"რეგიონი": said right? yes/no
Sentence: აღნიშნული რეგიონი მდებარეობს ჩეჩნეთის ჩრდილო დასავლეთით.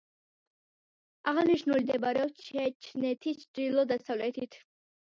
no